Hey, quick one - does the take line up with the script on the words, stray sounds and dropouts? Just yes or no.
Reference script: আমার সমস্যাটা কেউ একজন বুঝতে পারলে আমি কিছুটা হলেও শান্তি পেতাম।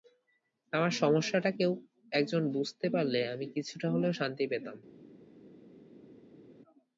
yes